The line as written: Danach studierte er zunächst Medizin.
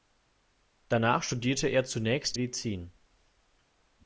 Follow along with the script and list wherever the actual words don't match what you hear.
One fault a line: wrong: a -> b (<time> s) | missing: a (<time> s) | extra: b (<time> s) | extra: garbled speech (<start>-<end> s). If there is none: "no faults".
no faults